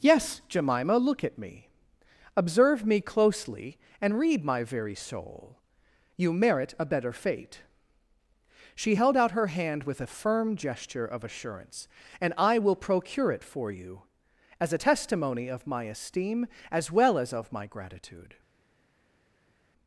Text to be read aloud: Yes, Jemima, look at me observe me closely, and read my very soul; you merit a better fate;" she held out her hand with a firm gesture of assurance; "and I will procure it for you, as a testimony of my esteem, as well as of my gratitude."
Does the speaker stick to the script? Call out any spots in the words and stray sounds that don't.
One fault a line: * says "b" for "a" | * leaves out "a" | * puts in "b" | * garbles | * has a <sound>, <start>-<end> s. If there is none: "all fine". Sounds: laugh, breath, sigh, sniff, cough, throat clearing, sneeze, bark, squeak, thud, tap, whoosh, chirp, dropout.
all fine